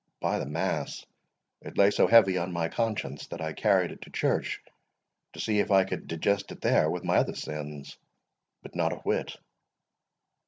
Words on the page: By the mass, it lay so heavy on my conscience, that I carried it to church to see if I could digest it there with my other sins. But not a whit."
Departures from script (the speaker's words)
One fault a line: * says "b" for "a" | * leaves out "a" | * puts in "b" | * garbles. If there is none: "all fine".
all fine